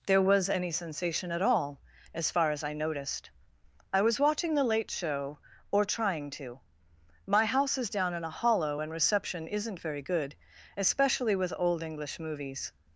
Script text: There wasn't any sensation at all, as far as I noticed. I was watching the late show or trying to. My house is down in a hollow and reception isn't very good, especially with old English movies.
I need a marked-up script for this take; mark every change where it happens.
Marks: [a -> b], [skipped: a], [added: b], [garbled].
There [wasn't -> was] any sensation at all, as far as I noticed. I was watching the late show or trying to. My house is down in a hollow and reception isn't very good, especially with old English movies.